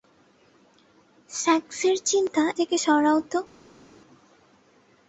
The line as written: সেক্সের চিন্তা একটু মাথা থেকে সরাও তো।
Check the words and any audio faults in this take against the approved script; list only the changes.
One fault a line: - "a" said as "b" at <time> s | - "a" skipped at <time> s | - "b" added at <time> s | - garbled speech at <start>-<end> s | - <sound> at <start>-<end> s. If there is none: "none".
- "একটু মাথা" skipped at 2.4 s